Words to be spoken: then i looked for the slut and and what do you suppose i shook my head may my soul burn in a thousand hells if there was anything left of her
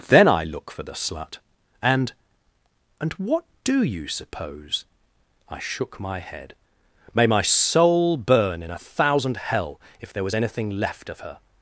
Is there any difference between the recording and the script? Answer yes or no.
yes